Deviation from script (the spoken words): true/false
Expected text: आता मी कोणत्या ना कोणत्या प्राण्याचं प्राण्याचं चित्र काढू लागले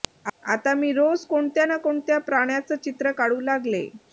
true